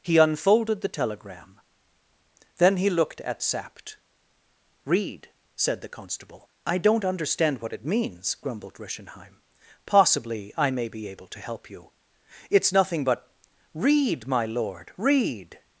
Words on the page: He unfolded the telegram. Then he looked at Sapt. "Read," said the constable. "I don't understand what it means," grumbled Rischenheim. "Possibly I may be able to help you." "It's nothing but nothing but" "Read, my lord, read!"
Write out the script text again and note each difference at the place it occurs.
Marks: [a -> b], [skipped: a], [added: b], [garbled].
He unfolded the telegram. Then he looked at Sapt. "Read," said the constable. "I don't understand what it means," grumbled Rischenheim. "Possibly I may be able to help you." "It's nothing but [skipped: nothing but"] "Read, my lord, read!"